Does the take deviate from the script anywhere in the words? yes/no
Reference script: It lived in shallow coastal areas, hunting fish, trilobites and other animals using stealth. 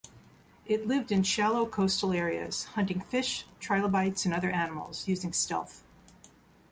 no